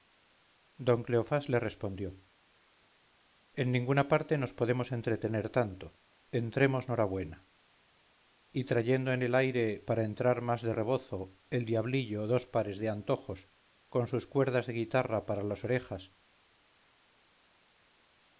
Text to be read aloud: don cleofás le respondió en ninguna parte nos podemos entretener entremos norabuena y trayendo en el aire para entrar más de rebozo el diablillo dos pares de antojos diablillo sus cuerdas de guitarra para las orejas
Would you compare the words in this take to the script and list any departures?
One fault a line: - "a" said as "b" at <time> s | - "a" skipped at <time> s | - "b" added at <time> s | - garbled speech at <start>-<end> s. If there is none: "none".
- "tanto" added at 5.5 s
- "diablillo" said as "con" at 13.9 s